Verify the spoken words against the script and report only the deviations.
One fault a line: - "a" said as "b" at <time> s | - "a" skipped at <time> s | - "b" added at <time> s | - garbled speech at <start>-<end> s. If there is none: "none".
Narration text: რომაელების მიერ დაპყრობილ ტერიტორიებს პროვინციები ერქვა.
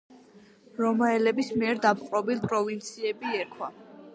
- "ტერიტორიებს" skipped at 2.4 s